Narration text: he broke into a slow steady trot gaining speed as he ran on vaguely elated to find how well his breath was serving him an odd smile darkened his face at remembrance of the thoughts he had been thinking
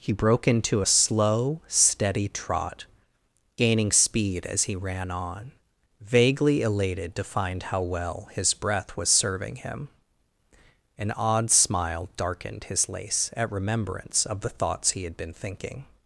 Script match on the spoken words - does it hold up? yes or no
no